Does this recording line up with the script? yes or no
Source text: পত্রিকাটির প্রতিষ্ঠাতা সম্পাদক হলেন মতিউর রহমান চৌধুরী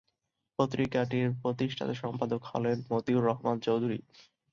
yes